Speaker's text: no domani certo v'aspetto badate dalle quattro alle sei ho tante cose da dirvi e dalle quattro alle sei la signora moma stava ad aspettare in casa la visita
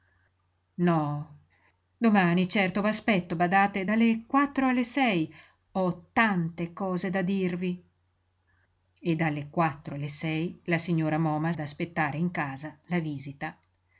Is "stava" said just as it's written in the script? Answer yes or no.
no